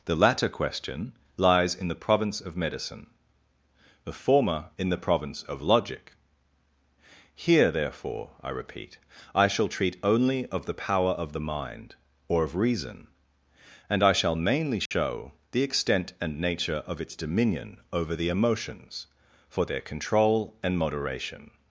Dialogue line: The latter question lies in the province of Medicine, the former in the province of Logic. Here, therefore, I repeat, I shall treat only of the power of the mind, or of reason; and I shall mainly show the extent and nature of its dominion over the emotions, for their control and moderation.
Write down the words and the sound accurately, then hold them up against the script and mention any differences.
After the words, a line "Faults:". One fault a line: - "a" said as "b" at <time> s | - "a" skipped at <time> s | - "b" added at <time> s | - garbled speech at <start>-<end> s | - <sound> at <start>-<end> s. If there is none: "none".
The latter question lies in the province of Medicine, the former in the province of Logic. Here, therefore, I repeat, I shall treat only of the power of the mind, or of reason; and I shall mainly show the extent and nature of its dominion over the emotions, for their control and moderation.
Faults:
- dropout at 14.9-14.9 s